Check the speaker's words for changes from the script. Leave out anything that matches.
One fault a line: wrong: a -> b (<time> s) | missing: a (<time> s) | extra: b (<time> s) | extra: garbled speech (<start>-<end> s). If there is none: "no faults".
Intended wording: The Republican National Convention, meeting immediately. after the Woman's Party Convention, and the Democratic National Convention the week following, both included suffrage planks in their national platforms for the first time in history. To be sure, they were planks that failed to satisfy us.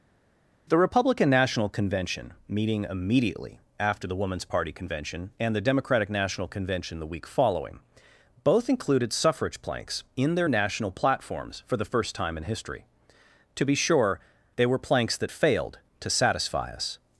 no faults